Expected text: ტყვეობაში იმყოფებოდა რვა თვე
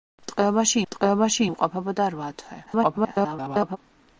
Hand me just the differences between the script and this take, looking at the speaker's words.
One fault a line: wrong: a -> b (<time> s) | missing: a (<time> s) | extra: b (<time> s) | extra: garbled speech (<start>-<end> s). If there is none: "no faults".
extra: ტყვეობაში (0.9 s)
extra: garbled speech (2.7-3.8 s)